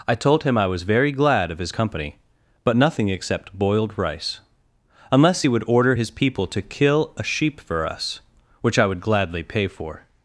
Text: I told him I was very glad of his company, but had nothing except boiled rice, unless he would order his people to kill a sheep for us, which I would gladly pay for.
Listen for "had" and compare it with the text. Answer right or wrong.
wrong